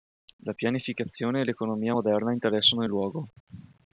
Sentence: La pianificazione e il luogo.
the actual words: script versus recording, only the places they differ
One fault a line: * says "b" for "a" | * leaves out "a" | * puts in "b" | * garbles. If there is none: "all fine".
* puts in "l'economia moderna interessano"